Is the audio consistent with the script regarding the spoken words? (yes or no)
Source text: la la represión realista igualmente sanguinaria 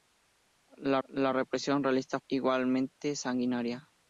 yes